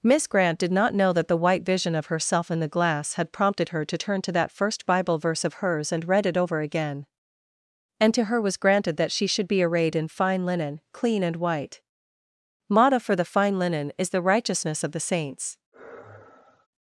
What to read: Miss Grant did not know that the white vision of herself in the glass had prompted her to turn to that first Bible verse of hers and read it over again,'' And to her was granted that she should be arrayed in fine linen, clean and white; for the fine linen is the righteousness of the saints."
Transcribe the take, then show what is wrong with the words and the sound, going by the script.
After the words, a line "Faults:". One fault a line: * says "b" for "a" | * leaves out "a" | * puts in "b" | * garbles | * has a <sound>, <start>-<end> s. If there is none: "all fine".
Miss Grant did not know that the white vision of herself in the glass had prompted her to turn to that first Bible verse of hers and read it over again,'' And to her was granted that she should be arrayed in fine linen, clean and white; motto for the fine linen is the righteousness of the saints."
Faults:
* puts in "motto"
* has a sigh, 15.7-16.7 s